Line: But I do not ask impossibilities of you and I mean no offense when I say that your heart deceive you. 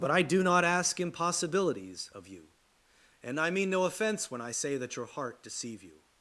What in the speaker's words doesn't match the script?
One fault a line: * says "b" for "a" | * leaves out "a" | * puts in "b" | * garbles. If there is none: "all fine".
all fine